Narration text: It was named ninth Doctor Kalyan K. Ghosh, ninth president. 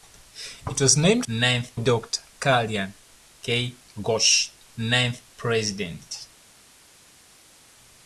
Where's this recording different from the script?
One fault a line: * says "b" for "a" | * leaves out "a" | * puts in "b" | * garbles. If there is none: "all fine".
all fine